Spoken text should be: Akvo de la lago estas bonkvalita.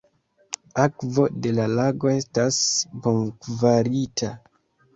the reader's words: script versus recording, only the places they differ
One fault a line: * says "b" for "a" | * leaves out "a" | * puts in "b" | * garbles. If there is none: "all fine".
all fine